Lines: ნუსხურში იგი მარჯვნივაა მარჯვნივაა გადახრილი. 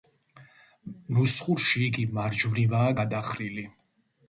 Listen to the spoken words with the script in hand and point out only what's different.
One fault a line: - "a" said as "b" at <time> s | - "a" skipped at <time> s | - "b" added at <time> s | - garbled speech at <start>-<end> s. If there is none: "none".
- "მარჯვნივაა" skipped at 3.0 s